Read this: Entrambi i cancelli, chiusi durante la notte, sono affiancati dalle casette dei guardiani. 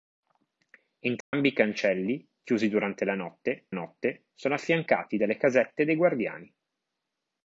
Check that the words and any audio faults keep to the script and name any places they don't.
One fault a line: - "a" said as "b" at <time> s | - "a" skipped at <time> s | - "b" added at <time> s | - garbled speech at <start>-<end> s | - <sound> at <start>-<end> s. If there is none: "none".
- dropout at 1.2-1.3 s
- "notte" added at 3.7 s